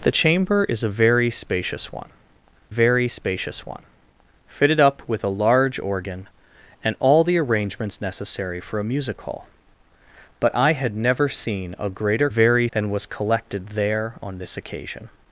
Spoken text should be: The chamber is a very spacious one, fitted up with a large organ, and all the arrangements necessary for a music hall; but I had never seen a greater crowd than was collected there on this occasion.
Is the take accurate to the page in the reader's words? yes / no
no